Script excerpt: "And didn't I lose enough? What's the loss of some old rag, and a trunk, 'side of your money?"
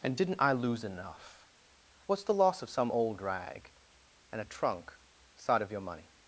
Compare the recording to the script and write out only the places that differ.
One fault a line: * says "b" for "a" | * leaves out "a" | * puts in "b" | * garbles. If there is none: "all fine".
all fine